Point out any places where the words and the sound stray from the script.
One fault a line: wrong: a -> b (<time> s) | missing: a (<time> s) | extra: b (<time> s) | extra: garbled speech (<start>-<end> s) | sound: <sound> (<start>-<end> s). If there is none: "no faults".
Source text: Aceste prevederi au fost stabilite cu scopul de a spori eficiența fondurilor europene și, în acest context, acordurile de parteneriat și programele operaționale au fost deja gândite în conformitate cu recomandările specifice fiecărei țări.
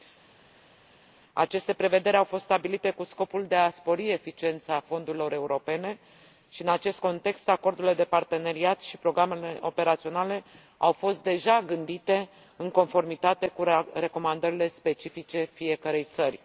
no faults